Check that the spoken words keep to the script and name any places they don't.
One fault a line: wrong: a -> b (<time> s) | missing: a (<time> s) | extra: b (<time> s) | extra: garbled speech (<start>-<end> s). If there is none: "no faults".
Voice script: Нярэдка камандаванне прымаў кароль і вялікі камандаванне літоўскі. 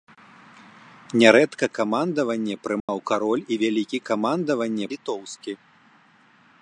no faults